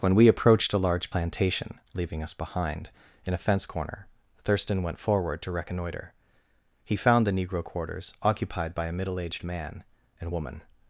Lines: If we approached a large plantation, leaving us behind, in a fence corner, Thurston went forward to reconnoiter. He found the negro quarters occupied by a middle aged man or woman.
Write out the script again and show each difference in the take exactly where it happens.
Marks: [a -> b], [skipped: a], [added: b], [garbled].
[If -> When] we approached a large plantation, leaving us behind, in a fence corner, Thurston went forward to reconnoiter. He found the negro quarters occupied by a middle aged man [or -> and] woman.